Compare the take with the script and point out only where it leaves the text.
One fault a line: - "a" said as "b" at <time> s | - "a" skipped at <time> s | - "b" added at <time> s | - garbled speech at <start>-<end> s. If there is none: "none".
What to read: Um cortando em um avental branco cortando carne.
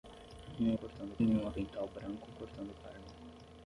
none